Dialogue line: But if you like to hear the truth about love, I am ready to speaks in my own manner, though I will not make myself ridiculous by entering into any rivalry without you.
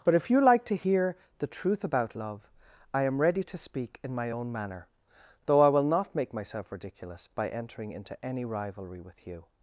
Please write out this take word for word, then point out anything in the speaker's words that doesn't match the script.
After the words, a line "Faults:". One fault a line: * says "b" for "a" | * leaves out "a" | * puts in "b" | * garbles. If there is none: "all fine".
But if you like to hear the truth about love, I am ready to speak in my own manner, though I will not make myself ridiculous by entering into any rivalry with you.
Faults:
* says "speak" for "speaks"
* says "with" for "without"